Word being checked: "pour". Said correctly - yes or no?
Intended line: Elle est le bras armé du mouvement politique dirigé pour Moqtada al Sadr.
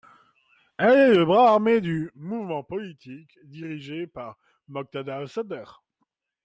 no